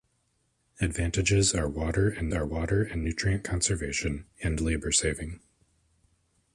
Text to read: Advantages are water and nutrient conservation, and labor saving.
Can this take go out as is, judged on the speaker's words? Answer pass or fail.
fail